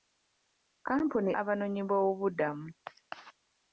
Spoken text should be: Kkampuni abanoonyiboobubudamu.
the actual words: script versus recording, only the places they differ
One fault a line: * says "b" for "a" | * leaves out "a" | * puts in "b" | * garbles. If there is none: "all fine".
all fine